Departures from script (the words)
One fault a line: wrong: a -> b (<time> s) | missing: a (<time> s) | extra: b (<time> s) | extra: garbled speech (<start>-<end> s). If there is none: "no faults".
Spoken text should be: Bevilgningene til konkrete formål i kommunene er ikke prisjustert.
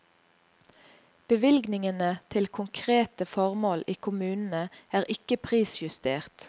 no faults